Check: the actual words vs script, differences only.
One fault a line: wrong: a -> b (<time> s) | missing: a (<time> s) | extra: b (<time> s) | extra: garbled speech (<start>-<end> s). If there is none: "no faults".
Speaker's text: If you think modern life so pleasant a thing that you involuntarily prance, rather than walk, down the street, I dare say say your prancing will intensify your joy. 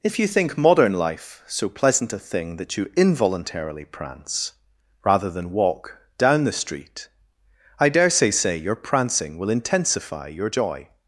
no faults